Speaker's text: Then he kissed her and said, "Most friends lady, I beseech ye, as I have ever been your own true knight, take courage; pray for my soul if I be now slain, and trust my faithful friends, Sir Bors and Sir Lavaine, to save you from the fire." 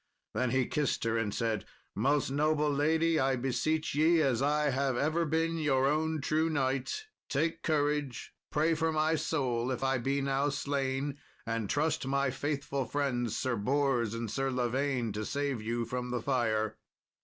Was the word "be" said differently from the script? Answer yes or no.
no